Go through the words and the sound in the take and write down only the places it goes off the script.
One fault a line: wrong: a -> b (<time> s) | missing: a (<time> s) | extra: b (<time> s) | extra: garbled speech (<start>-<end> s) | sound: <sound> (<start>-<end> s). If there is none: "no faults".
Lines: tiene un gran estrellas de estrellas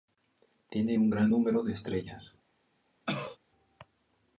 wrong: estrellas -> número (1.3 s)
sound: cough (3.1-3.4 s)